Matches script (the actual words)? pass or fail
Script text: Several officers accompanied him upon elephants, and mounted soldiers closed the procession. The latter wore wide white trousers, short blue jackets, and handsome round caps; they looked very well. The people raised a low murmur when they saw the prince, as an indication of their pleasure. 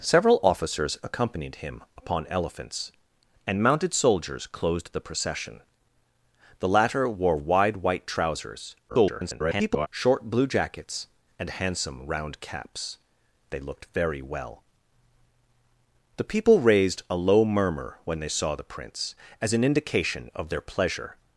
fail